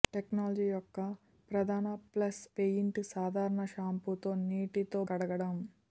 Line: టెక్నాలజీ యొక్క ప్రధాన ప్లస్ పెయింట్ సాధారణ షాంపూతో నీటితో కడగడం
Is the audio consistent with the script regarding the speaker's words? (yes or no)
yes